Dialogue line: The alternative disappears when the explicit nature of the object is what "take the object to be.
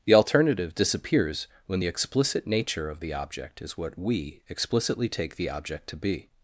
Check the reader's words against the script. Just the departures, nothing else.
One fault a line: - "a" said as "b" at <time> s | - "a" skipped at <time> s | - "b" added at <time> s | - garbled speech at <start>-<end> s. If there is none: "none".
- "we explicitly" added at 4.0 s